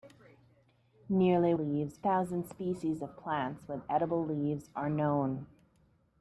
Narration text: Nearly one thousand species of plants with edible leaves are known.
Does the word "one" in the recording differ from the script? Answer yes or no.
yes